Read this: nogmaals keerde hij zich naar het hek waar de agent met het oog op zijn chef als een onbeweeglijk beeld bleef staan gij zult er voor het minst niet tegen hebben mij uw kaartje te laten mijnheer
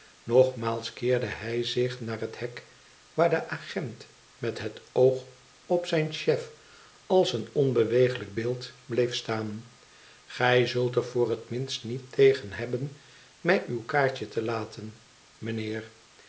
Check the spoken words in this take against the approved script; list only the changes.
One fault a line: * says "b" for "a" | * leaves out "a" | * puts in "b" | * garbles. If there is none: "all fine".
all fine